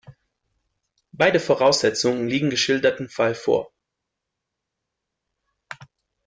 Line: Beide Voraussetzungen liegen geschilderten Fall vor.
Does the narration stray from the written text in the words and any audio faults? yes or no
no